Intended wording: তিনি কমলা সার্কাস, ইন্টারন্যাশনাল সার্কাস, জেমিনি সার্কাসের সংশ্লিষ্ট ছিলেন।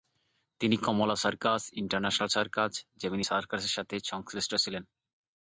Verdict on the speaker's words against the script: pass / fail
fail